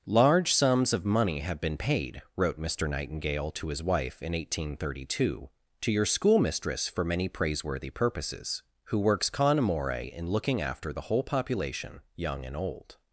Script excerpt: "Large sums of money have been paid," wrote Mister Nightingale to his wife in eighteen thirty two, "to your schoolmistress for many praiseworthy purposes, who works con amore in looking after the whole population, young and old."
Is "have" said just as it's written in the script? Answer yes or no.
yes